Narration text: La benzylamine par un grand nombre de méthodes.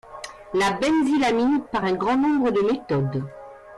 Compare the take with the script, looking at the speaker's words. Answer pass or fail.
pass